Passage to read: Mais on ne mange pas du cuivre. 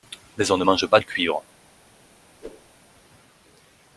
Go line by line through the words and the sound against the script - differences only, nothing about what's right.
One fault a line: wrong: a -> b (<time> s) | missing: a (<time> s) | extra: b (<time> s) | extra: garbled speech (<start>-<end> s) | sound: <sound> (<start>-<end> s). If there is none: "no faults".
sound: whoosh (2.4-2.7 s)